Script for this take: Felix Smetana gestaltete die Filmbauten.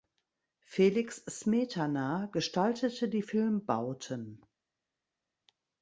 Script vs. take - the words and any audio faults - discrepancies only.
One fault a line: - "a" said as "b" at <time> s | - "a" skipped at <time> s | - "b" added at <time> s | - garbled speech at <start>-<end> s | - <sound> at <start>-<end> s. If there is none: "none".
none